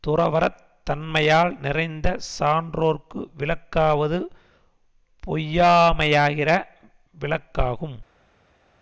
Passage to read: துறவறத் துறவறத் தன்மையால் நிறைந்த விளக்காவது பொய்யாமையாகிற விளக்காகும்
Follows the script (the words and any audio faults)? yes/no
no